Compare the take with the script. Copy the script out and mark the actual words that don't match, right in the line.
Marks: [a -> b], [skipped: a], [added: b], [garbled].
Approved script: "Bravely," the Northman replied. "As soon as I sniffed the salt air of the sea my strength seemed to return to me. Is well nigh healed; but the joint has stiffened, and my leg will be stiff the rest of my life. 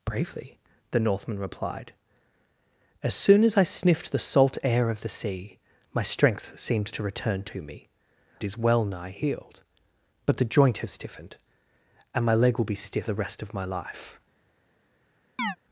"Bravely," the Northman replied. "As soon as I sniffed the salt air of the sea my strength seemed to return to me. Is well nigh healed; but the joint has stiffened, and my leg will be stiff the rest of my life.